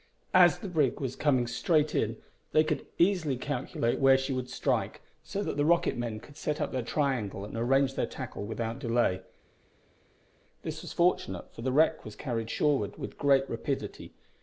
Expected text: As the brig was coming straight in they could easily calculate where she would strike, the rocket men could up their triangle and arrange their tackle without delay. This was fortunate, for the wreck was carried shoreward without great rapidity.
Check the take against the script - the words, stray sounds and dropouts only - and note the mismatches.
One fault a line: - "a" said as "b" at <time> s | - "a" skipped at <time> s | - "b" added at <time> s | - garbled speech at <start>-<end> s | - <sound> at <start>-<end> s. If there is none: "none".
- "so that" added at 5.2 s
- "set" added at 6.4 s
- "without" said as "with" at 13.0 s